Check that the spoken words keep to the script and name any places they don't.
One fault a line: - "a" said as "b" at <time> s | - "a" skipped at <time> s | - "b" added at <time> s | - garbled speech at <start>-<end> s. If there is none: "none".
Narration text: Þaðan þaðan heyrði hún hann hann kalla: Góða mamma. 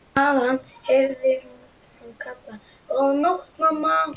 - "þaðan" skipped at 0.6 s
- "hann" skipped at 2.1 s
- "nótt" added at 3.2 s